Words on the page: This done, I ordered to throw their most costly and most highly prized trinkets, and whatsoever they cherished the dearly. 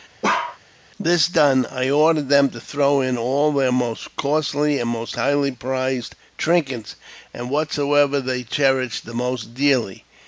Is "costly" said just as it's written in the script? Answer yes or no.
yes